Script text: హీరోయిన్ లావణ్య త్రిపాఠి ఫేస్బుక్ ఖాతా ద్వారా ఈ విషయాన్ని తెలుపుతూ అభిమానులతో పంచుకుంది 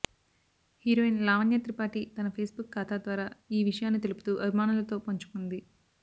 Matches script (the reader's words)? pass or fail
fail